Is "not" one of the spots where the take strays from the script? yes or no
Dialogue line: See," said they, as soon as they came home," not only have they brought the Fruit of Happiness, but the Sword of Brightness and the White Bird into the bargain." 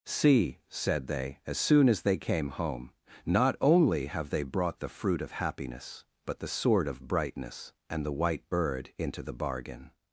no